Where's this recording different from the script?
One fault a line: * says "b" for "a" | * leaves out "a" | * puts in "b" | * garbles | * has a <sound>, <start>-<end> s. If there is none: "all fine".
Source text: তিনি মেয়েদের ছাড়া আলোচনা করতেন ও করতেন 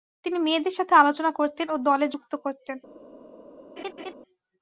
* says "সাথে" for "ছাড়া"
* puts in "দলে যুক্ত"
* has a laugh, 3.8-4.1 s